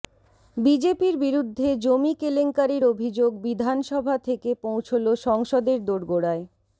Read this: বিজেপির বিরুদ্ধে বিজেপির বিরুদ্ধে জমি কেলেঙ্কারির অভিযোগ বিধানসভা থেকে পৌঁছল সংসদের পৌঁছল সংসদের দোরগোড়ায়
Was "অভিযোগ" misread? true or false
false